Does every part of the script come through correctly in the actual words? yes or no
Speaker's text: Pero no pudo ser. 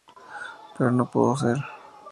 yes